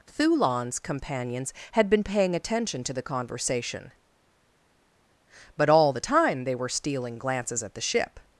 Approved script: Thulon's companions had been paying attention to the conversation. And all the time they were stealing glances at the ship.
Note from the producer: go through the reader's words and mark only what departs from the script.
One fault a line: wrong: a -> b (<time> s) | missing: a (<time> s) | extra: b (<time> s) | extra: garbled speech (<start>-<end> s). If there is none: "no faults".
wrong: And -> But (5.6 s)